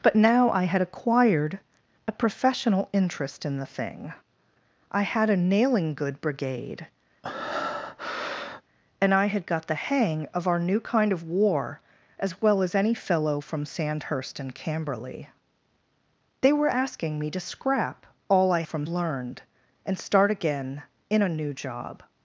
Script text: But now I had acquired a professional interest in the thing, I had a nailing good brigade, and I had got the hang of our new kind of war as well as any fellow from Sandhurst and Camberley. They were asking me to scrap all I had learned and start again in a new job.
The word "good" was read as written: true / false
true